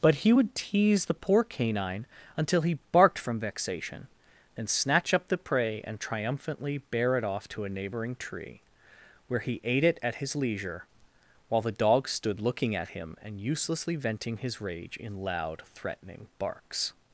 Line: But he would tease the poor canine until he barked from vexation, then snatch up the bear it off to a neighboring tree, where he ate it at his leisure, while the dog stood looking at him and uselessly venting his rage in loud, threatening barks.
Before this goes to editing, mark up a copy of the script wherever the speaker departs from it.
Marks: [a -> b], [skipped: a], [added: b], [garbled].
But he would tease the poor canine until he barked from vexation, then snatch up the [added: prey and triumphantly] bear it off to a neighboring tree, where he ate it at his leisure, while the dog stood looking at him and uselessly venting his rage in loud, threatening barks.